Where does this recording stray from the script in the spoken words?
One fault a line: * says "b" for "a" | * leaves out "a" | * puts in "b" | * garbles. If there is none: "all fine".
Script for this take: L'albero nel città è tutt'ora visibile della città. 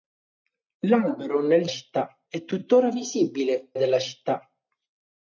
all fine